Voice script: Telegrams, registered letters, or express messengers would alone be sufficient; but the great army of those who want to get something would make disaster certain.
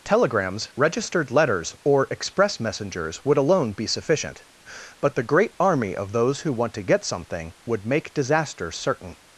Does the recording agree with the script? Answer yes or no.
yes